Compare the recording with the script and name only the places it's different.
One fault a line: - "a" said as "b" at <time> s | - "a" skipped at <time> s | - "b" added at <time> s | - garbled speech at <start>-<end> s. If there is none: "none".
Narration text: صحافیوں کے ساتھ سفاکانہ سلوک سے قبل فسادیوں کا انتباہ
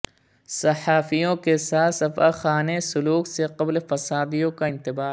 none